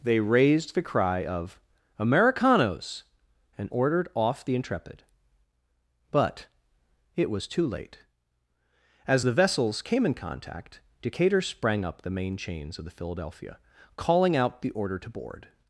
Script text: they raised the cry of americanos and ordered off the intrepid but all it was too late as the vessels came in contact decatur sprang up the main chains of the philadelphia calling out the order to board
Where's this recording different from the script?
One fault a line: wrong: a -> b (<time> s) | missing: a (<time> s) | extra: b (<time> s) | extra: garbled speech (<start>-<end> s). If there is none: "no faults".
missing: all (6.5 s)